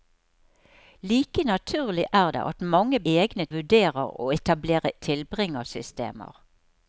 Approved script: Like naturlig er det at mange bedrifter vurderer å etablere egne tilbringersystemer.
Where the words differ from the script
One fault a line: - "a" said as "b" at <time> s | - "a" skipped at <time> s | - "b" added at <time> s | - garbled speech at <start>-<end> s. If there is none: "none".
- "bedrifter" said as "egne" at 3.1 s
- "egne" skipped at 4.9 s